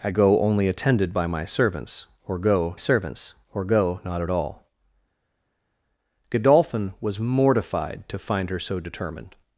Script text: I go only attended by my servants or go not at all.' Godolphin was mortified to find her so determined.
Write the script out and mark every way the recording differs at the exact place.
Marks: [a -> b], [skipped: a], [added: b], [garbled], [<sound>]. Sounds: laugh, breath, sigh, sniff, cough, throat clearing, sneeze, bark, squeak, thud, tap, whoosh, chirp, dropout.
I go only attended by my servants or go [added: servants or go] not at all.' Godolphin was mortified to find her so determined.